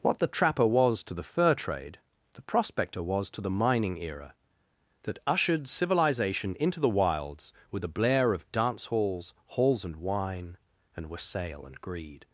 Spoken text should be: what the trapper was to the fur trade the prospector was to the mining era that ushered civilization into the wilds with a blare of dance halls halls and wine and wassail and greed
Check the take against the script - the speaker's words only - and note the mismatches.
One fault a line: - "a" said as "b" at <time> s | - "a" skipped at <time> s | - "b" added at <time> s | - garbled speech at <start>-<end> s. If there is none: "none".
none